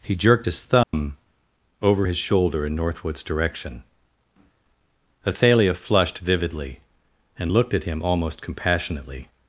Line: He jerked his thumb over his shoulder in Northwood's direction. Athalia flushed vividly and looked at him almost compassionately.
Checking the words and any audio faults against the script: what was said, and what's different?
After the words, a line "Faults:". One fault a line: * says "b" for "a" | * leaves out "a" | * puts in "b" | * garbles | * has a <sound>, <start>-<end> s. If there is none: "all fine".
He jerked his thumb over his shoulder in Northwood's direction. Athalia flushed vividly and looked at him almost compassionately.
Faults:
* has a dropout, 0.8-0.9 s